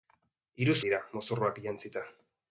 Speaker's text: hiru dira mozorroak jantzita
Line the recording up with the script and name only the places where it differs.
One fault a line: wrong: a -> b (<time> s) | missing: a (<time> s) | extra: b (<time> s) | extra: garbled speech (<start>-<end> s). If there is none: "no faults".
no faults